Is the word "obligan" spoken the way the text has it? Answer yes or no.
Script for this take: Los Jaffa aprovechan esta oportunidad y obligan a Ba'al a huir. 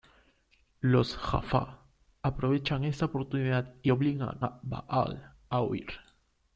yes